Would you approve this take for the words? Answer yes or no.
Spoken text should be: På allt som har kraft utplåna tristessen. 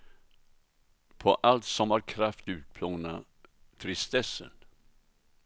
yes